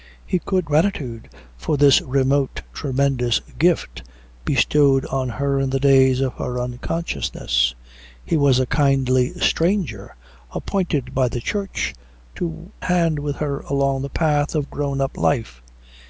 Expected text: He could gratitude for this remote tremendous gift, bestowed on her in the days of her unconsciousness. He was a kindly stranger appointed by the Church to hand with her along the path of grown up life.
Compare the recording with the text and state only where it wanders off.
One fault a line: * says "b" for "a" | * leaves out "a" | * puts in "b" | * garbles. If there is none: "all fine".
all fine